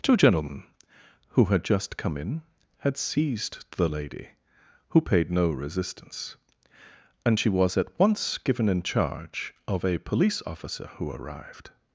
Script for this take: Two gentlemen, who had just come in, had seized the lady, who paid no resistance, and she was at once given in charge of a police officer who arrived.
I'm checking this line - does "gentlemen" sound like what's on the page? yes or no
yes